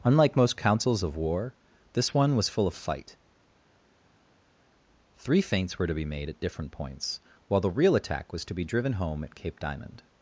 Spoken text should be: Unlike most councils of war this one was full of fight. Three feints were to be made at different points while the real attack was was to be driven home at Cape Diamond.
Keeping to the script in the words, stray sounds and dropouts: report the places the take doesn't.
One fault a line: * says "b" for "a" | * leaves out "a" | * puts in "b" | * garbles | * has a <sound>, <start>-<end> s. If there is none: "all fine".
* leaves out "was"